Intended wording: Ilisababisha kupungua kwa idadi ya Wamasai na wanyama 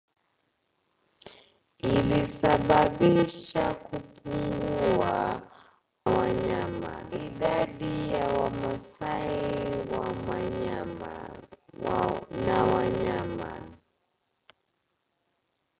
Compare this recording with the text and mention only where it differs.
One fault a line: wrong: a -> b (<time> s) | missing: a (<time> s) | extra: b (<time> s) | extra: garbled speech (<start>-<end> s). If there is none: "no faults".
wrong: kwa -> wanyama (6.1 s)